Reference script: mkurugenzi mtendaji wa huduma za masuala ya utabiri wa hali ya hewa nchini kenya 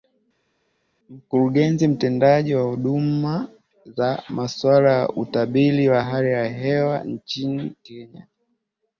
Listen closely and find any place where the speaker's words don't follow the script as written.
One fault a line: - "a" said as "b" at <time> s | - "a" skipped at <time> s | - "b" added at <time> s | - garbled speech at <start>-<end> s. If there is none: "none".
none